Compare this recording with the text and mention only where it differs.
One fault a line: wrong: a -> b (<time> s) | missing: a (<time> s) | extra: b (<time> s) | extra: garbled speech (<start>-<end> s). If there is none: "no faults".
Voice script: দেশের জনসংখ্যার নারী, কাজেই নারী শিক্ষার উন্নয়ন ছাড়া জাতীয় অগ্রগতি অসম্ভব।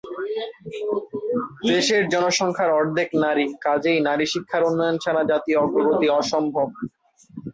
extra: অর্ধেক (2.8 s)